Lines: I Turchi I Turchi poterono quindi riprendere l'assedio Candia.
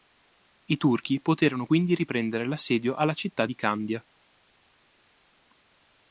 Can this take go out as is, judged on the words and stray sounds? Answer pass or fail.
fail